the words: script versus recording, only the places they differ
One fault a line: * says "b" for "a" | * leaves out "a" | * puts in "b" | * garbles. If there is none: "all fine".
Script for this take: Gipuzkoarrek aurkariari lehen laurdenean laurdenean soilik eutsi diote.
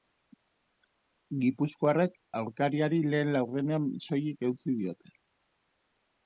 * leaves out "laurdenean"